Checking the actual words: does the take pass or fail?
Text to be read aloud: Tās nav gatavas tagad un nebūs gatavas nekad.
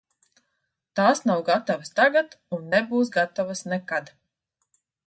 pass